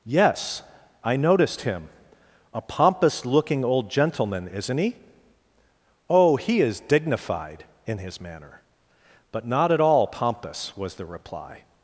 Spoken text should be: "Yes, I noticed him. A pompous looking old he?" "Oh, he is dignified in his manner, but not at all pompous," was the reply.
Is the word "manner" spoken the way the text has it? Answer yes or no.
yes